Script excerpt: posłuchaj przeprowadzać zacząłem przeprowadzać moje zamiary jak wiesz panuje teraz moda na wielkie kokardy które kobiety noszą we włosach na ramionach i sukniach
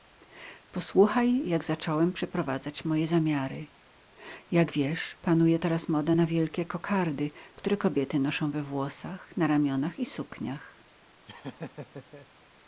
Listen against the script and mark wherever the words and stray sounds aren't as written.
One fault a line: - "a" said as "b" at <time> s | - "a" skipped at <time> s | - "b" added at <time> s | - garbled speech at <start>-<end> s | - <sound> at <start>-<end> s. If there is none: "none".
- "przeprowadzać" said as "jak" at 1.5 s
- laugh at 11.3-12.3 s